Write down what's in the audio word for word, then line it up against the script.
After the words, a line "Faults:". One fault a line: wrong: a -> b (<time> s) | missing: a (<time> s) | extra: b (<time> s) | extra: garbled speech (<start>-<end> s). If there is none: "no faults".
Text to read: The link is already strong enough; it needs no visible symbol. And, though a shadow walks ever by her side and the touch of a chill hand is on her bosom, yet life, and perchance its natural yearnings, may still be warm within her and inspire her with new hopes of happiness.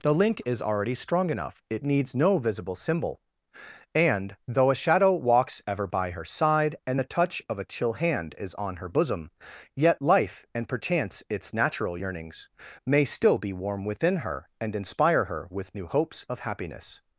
The link is already strong enough; it needs no visible symbol. And, though a shadow walks ever by her side and the touch of a chill hand is on her bosom, yet life, and perchance its natural yearnings, may still be warm within her and inspire her with new hopes of happiness.
Faults:
no faults